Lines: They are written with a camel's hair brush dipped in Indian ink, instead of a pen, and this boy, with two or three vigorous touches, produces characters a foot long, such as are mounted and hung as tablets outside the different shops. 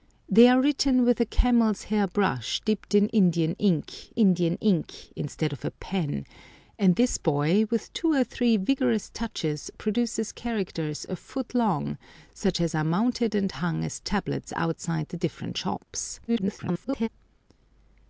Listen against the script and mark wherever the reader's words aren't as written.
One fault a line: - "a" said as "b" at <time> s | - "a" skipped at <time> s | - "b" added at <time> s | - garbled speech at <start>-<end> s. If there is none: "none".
- "Indian ink" added at 4.1 s
- garbled speech at 16.3-17.1 s